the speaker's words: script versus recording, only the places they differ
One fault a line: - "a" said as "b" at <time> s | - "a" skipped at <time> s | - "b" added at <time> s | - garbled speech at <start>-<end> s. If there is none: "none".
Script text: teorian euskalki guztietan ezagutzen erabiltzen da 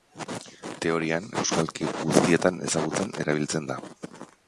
none